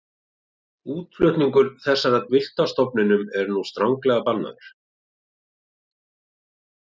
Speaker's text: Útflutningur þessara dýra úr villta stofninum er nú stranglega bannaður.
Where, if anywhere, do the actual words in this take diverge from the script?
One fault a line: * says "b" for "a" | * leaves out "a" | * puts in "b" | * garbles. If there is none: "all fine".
* leaves out "dýra úr"